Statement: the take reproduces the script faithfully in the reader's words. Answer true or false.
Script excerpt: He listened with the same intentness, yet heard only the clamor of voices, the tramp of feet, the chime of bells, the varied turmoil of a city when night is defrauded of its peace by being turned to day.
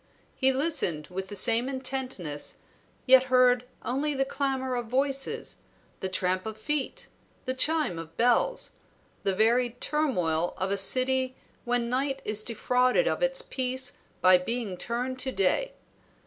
true